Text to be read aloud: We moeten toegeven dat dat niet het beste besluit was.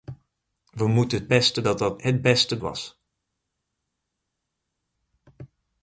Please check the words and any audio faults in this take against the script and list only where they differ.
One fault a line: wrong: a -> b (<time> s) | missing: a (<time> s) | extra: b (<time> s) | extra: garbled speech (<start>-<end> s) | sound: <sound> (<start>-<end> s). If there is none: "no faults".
wrong: toegeven -> beste (1.3 s)
missing: niet (2.0 s)
missing: besluit (2.6 s)